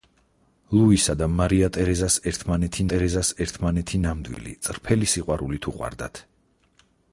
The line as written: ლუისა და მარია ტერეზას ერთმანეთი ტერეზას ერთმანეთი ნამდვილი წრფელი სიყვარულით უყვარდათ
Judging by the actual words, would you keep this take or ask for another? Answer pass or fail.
pass